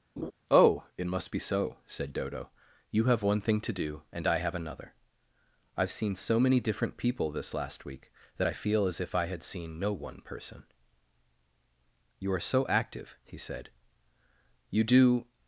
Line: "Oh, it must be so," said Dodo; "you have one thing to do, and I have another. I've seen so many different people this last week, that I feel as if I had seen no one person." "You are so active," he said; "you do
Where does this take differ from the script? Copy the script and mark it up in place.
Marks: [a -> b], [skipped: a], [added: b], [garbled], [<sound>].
[laugh] "Oh, it must be so," said Dodo; "you have one thing to do, and I have another. I've seen so many different people this last week, that I feel as if I had seen no one person." "You are so active," he said; "you do